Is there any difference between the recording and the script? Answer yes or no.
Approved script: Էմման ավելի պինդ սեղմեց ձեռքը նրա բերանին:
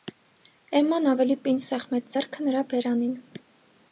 no